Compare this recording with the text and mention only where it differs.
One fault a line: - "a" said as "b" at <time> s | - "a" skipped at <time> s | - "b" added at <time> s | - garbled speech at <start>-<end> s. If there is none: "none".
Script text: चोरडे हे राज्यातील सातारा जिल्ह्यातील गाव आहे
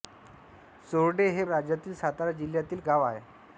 none